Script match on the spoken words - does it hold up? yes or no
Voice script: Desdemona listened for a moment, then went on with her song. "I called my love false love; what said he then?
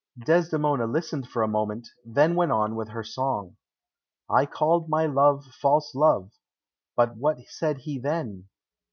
no